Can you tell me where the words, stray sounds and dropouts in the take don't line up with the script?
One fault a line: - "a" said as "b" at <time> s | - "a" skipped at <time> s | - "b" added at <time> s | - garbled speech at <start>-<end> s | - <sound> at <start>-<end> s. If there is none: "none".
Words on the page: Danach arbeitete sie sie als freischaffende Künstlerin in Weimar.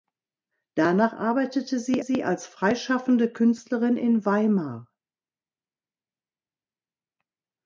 none